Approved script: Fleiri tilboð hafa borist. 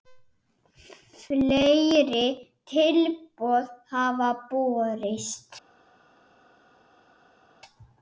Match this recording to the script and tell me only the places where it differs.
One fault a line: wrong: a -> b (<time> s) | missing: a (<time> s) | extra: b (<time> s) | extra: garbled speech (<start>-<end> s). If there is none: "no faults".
no faults